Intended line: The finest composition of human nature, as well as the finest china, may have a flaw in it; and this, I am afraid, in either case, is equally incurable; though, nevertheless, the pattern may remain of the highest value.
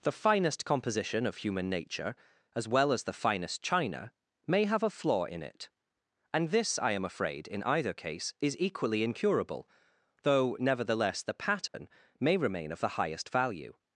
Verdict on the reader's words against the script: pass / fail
pass